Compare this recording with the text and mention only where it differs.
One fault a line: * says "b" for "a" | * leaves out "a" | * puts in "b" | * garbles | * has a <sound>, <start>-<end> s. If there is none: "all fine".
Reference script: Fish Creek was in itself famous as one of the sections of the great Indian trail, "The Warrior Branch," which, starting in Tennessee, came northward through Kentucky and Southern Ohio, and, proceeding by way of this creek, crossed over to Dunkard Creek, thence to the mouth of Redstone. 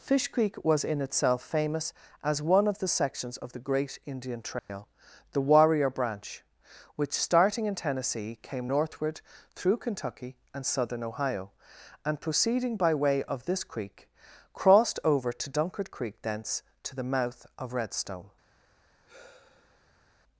* has a dropout, 4.6-4.7 s
* has a sigh, 19.0-20.1 s